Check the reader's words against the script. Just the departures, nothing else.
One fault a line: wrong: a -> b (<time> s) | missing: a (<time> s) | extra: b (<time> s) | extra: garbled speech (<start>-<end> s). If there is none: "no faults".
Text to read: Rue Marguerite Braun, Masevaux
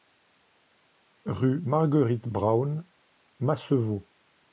no faults